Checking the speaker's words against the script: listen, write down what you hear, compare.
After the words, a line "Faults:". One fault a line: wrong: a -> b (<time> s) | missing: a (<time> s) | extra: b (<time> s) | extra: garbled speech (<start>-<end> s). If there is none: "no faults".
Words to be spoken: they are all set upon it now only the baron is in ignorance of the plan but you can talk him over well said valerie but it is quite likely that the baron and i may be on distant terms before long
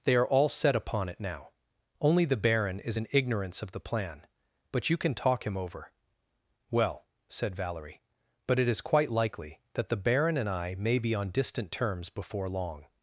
they are all set upon it now only the baron is in ignorance of the plan but you can talk him over well said valerie but it is quite likely that the baron and i may be on distant terms before long
Faults:
no faults